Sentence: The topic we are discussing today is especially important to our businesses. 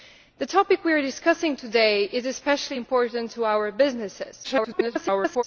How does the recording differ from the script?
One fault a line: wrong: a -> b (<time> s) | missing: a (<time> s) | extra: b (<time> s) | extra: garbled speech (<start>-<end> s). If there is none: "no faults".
extra: garbled speech (4.4-5.4 s)